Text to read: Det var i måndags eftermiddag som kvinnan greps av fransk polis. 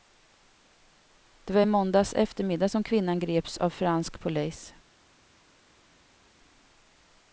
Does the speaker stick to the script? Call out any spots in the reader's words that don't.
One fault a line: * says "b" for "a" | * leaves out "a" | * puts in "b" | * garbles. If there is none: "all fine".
all fine